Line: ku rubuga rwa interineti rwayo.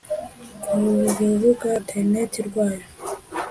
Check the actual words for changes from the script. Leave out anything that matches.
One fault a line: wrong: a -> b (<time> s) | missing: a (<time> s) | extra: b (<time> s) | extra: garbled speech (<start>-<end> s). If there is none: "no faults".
missing: rwa (1.7 s)